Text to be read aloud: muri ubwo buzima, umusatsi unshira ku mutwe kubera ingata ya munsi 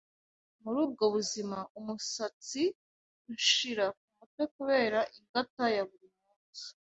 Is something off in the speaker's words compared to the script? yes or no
yes